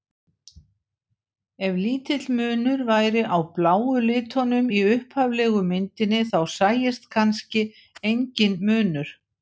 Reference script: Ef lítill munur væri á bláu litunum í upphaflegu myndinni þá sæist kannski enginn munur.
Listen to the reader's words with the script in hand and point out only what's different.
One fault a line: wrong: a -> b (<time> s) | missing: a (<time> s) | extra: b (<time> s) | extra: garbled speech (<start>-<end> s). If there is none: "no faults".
no faults